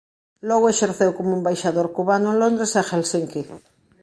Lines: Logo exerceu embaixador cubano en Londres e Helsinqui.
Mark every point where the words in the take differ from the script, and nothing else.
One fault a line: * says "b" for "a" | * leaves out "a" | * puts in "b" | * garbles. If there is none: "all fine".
* puts in "como"